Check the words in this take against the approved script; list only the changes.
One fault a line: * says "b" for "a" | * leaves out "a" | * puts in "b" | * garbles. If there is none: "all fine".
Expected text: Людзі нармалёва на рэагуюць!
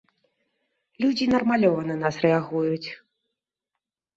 * puts in "нас"